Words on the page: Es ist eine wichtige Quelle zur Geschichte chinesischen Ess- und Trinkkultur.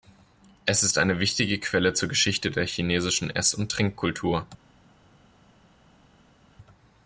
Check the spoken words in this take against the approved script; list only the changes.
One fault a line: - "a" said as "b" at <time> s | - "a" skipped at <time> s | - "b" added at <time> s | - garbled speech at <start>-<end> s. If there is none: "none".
- "der" added at 2.5 s